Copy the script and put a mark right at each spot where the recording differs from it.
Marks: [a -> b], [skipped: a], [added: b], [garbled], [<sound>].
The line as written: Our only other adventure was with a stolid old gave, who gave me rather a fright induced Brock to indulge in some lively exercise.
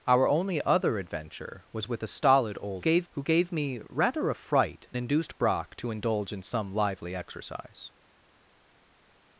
Our only other adventure was with a stolid old gave, who gave me rather a fright induced Brock to indulge in some lively exercise.